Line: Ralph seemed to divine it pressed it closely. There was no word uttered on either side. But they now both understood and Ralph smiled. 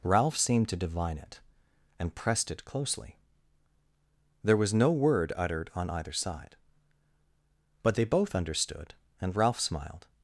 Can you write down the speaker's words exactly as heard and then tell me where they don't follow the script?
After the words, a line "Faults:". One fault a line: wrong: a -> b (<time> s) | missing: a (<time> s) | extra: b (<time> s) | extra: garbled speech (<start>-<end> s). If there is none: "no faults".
Ralph seemed to divine it and pressed it closely. There was no word uttered on either side. But they both understood and Ralph smiled.
Faults:
extra: and (2.0 s)
missing: now (8.1 s)